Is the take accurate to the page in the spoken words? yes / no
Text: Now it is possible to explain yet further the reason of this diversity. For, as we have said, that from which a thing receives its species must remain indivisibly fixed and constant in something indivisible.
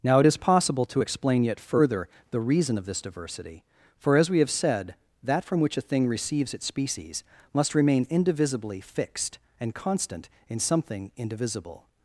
yes